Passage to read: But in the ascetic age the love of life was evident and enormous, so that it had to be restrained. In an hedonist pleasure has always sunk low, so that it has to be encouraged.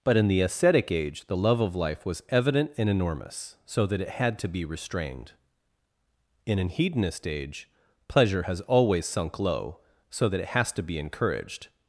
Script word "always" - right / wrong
right